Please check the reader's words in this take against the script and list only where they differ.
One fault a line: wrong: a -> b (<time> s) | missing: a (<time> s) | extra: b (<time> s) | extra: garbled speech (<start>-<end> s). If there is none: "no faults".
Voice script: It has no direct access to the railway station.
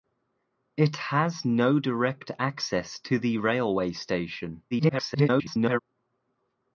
extra: garbled speech (4.7-5.8 s)